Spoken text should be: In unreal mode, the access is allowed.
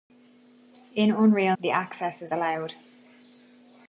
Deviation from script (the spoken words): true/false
true